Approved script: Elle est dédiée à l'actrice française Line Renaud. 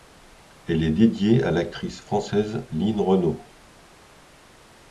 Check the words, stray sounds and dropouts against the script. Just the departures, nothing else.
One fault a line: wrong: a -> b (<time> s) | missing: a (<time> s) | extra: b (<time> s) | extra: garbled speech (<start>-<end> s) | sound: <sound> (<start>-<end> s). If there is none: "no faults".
no faults